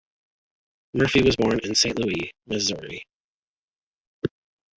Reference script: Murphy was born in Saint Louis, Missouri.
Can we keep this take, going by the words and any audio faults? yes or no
yes